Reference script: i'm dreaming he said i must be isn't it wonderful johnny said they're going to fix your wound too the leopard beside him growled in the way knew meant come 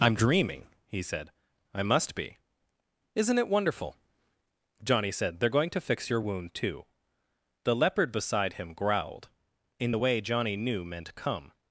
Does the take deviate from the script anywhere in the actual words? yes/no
yes